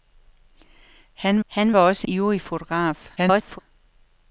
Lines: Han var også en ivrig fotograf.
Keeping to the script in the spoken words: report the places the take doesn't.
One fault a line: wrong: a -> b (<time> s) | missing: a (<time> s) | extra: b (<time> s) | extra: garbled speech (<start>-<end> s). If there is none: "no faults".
extra: han (1.5 s)
missing: en (2.1 s)
extra: garbled speech (3.2-3.6 s)